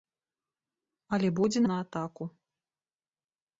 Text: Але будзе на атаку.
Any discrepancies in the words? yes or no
no